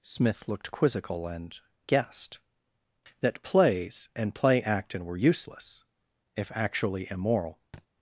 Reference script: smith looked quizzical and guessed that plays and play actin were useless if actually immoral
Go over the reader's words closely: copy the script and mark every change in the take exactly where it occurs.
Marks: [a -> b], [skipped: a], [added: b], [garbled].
smith looked quizzical and guessed that plays and play actin were useless if actually immoral